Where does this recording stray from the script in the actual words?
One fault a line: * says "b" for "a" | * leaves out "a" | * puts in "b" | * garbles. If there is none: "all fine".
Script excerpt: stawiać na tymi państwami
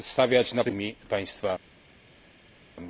all fine